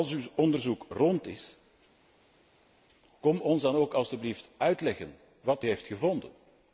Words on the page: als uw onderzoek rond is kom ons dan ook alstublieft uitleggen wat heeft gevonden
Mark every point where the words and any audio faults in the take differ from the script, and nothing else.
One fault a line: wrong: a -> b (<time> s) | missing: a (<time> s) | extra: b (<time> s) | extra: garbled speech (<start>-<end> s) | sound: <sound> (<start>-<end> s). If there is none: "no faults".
no faults